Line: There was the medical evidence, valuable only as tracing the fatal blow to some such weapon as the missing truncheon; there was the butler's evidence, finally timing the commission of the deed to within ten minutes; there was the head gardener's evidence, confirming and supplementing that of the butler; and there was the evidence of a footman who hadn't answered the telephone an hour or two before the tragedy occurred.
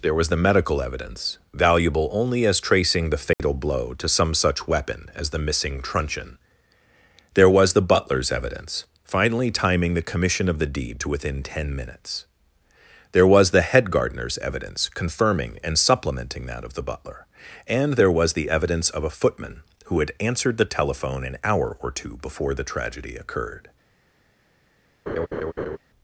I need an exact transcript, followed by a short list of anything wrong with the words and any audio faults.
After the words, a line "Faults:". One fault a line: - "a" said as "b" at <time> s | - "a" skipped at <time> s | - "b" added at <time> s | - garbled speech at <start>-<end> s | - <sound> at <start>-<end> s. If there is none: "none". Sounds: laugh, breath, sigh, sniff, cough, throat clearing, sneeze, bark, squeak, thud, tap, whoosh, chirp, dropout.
There was the medical evidence, valuable only as tracing the fatal blow to some such weapon as the missing truncheon; there was the butler's evidence, finally timing the commission of the deed to within ten minutes; there was the head gardener's evidence, confirming and supplementing that of the butler; and there was the evidence of a footman who had answered the telephone an hour or two before the tragedy occurred.
Faults:
- dropout at 3.3-3.4 s
- "hadn't" said as "had" at 20.0 s
- laugh at 25.1-25.8 s